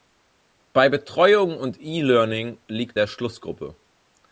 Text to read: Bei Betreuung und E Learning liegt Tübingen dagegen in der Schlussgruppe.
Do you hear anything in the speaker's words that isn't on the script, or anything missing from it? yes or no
yes